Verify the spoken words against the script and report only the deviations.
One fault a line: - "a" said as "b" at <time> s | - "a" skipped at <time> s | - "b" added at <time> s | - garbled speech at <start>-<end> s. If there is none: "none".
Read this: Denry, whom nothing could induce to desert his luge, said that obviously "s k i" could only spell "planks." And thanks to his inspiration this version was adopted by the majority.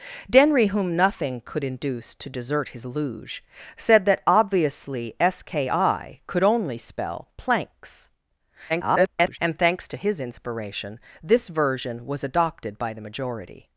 - garbled speech at 8.7-9.4 s